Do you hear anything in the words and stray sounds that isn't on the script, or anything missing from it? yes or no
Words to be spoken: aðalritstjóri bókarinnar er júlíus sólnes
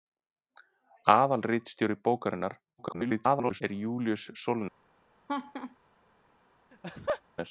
yes